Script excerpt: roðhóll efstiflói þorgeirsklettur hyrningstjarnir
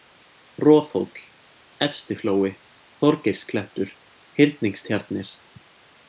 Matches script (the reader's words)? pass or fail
pass